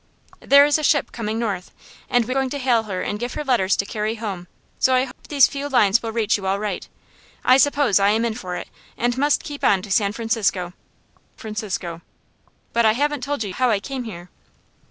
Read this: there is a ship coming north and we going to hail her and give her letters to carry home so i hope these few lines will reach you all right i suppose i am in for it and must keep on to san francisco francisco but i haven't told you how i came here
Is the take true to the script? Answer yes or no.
yes